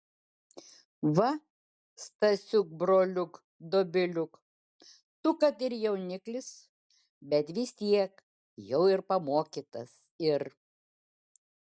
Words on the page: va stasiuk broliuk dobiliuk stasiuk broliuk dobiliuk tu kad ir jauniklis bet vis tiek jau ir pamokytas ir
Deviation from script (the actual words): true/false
true